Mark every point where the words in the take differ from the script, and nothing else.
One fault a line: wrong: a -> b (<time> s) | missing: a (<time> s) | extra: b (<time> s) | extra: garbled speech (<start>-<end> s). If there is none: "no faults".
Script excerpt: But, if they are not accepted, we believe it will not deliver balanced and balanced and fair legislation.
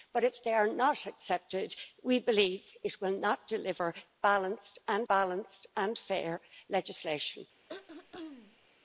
no faults